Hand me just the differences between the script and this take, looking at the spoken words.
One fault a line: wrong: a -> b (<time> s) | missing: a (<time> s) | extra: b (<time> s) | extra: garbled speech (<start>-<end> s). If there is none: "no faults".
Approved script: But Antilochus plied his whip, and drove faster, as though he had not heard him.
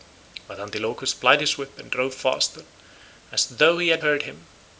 missing: not (4.0 s)